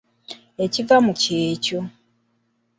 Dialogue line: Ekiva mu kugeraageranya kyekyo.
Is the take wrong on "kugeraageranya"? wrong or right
wrong